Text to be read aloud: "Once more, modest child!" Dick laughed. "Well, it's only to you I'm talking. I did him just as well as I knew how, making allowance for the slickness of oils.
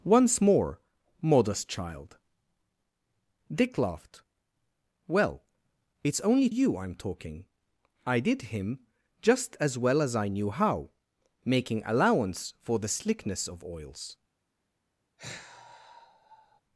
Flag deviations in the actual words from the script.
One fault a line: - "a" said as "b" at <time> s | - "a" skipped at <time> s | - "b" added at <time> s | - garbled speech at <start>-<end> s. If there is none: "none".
- "to" skipped at 6.5 s